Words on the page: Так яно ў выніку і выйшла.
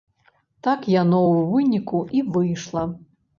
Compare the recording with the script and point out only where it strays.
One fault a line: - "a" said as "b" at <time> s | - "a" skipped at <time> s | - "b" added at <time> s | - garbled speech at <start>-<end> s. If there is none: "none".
none